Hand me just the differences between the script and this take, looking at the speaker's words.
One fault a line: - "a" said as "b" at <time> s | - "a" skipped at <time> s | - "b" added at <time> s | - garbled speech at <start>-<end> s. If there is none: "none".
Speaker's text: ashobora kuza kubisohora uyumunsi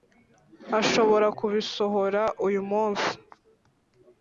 - "kuza" skipped at 1.3 s